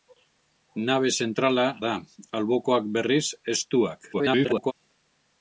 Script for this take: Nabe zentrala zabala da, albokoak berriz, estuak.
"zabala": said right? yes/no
no